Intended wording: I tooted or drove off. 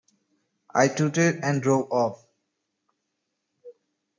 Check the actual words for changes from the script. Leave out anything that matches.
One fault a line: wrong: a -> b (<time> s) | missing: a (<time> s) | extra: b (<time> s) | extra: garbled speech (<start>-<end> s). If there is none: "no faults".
wrong: or -> and (1.4 s)